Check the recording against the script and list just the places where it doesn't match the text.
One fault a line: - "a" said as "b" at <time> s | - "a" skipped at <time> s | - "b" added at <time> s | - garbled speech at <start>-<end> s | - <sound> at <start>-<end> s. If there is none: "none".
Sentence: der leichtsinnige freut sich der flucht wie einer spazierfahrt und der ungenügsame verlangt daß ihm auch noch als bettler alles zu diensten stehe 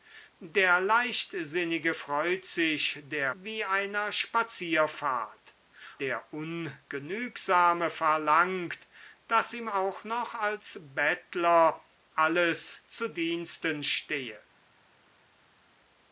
- "flucht" skipped at 3.3 s
- "und" skipped at 5.5 s